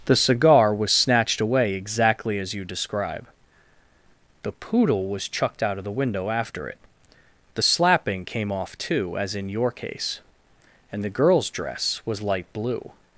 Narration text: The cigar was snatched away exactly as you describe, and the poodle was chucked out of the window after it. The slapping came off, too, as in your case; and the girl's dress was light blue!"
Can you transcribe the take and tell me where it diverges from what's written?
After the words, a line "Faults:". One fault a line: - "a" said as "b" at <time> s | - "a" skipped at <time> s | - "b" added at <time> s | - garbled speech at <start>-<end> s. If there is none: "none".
The cigar was snatched away exactly as you describe, the poodle was chucked out of the window after it. The slapping came off, too, as in your case; and the girl's dress was light blue!"
Faults:
- "and" skipped at 3.3 s